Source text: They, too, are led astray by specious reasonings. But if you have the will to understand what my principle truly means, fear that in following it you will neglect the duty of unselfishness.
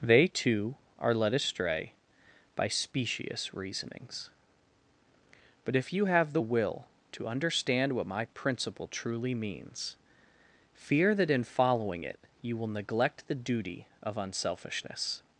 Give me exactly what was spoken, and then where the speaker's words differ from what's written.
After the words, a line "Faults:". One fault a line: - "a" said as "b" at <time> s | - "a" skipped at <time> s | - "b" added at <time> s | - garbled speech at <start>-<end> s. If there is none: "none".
They, too, are led astray by specious reasonings. But if you have the will to understand what my principle truly means, fear that in following it you will neglect the duty of unselfishness.
Faults:
none